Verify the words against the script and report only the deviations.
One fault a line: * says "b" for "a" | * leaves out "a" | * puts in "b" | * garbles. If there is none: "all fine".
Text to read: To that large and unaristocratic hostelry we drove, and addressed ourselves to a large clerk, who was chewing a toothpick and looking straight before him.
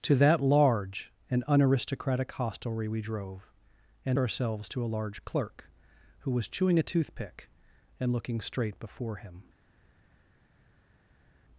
* leaves out "addressed"